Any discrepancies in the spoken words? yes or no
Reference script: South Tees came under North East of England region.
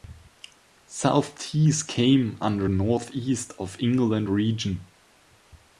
no